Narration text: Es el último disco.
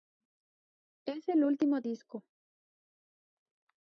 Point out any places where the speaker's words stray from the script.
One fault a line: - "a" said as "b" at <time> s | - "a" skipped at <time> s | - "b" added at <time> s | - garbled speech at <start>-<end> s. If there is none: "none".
none